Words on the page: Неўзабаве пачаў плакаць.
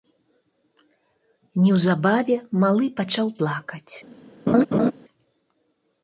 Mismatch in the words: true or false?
true